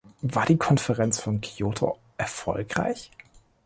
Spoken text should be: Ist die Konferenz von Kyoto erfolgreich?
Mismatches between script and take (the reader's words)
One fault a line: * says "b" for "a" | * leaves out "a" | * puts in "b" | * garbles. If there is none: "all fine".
* says "War" for "Ist"